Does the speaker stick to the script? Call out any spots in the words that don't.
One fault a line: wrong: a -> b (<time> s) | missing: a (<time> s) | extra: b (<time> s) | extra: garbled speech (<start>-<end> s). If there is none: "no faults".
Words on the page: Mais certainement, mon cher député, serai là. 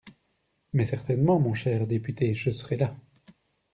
extra: je (2.3 s)